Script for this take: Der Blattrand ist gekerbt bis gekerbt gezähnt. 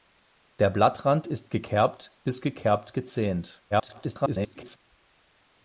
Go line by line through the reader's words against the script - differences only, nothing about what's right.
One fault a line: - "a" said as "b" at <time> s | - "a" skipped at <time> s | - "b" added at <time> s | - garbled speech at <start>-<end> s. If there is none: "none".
- garbled speech at 3.7-4.8 s